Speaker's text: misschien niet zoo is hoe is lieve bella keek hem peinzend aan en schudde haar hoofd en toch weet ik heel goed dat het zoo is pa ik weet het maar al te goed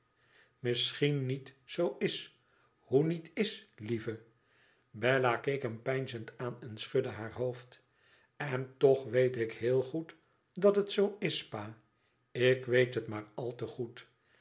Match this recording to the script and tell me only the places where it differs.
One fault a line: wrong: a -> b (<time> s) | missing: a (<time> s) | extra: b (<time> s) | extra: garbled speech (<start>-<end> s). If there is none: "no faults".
extra: niet (3.0 s)